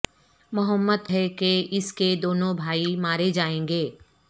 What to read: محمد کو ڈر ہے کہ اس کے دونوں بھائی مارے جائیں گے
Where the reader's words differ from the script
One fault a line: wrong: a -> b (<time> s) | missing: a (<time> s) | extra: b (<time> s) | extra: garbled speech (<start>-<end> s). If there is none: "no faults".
missing: کو ڈر (1.1 s)